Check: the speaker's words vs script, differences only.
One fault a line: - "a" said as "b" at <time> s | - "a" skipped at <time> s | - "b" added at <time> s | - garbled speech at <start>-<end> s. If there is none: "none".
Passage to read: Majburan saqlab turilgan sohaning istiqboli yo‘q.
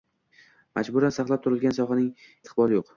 none